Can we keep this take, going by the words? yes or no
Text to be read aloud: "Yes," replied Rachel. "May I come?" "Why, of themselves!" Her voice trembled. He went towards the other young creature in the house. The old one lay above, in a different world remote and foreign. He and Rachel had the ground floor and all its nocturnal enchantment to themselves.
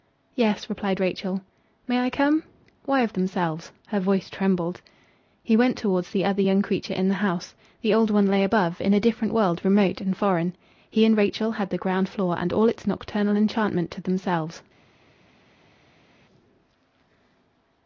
yes